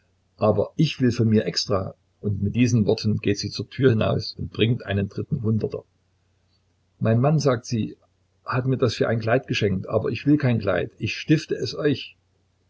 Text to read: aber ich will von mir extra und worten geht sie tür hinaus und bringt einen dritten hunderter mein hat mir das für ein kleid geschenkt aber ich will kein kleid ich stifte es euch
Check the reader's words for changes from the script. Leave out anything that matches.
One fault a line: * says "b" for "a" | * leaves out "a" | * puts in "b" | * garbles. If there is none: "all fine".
* puts in "mit diesen"
* puts in "zur"
* puts in "mann sagt sie"